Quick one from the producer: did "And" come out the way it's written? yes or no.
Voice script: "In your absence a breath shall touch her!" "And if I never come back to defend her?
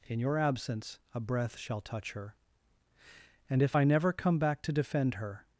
yes